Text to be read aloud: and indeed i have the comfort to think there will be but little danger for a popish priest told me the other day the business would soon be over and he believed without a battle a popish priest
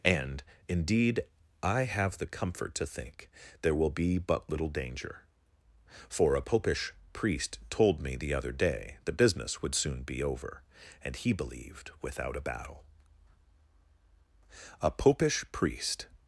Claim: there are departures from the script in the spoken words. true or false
false